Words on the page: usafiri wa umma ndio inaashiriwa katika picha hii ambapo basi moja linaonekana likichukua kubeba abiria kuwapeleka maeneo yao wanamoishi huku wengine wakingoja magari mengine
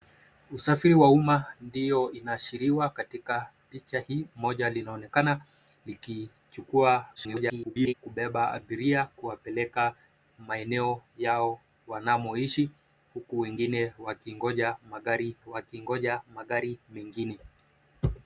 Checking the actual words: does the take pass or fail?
fail